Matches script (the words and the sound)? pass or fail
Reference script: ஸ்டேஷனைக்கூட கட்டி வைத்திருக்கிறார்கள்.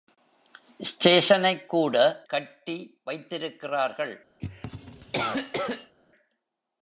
fail